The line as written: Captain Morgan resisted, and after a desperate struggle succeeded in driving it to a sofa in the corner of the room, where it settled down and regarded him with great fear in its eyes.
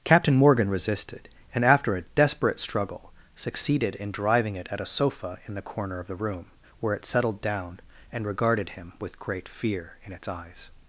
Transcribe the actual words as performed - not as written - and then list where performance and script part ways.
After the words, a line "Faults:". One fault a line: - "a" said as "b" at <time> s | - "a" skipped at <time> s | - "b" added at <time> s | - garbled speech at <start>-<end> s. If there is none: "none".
Captain Morgan resisted, and after a desperate struggle succeeded in driving it at a sofa in the corner of the room, where it settled down and regarded him with great fear in its eyes.
Faults:
- "to" said as "at" at 4.7 s